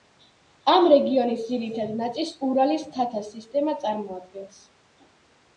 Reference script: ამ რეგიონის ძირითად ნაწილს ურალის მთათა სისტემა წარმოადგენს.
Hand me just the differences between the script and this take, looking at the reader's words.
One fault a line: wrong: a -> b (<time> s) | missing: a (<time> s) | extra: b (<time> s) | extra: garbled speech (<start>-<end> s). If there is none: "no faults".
no faults